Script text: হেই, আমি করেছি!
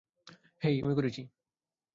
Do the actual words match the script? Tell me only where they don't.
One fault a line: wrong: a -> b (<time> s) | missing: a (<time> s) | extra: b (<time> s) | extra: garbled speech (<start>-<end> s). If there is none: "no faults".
no faults